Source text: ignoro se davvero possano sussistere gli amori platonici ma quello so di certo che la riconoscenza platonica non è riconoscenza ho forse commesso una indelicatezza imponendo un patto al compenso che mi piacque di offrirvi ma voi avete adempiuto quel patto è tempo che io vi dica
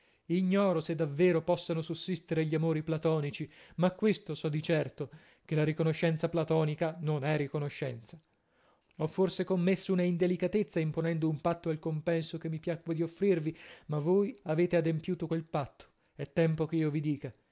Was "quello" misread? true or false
true